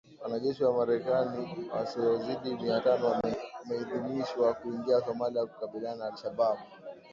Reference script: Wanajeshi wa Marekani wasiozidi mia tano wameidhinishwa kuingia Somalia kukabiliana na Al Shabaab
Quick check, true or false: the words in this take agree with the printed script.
true